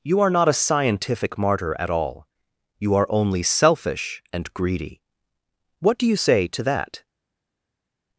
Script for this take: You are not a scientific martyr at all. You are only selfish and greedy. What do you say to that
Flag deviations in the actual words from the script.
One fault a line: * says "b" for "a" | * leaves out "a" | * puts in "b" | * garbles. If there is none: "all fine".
all fine